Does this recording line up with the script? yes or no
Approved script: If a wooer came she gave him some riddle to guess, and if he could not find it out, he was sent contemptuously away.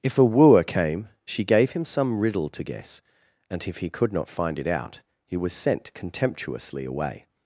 yes